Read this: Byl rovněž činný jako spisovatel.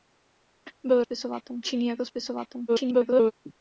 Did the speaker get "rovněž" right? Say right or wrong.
wrong